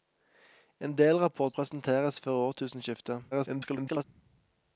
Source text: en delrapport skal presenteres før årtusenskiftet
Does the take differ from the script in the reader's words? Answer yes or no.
yes